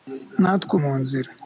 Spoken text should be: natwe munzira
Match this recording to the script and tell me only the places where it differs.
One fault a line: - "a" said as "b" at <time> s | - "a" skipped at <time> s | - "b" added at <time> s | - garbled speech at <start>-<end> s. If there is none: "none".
none